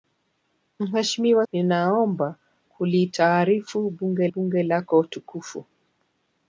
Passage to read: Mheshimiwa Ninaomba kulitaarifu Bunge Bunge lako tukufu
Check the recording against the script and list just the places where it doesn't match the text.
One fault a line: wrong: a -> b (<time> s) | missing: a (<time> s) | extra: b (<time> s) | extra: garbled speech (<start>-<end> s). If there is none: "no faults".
no faults